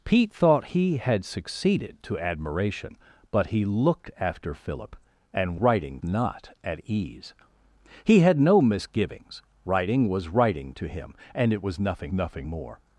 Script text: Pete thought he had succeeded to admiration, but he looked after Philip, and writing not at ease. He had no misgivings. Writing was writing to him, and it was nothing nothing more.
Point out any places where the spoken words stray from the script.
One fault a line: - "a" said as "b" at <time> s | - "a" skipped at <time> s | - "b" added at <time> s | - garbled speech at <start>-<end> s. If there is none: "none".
none